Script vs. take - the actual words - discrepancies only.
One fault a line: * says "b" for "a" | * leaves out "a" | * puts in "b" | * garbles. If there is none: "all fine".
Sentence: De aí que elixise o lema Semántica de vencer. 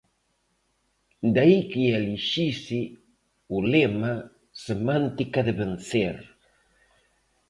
all fine